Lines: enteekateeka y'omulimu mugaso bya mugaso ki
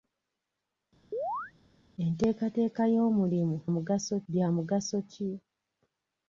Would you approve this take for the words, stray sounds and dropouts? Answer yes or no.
no